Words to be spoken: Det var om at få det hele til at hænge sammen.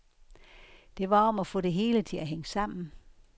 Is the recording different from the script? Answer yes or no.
no